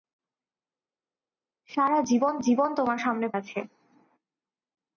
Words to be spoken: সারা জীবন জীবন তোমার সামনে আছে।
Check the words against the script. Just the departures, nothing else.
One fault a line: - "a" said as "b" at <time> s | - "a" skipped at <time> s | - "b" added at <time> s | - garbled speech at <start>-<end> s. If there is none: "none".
none